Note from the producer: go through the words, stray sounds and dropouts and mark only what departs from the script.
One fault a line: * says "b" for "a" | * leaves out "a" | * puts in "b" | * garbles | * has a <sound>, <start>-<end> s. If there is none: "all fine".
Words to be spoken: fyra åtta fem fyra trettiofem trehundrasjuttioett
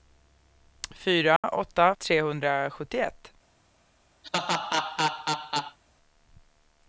* has a dropout, 1.4-1.4 s
* leaves out "fem fyra trettiofem"
* has a laugh, 4.2-5.8 s